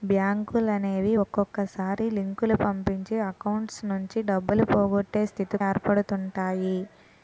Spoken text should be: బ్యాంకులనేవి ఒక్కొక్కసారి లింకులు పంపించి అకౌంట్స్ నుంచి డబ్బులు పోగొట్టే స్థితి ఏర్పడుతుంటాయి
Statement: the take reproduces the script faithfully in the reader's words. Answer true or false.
true